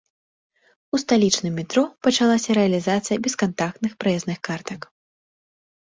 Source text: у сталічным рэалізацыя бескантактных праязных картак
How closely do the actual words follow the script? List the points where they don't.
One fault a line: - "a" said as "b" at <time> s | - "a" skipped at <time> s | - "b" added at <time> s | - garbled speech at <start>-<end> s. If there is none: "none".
- "метро пачалася" added at 1.6 s